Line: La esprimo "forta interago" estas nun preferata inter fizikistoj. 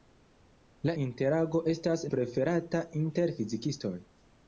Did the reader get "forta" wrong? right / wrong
wrong